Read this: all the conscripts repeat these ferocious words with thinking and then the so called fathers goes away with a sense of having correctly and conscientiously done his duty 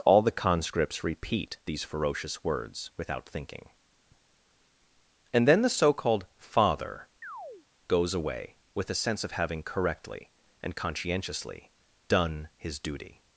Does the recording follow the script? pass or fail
fail